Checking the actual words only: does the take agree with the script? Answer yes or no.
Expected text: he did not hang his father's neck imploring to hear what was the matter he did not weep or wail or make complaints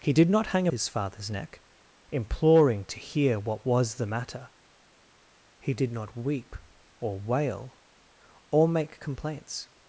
yes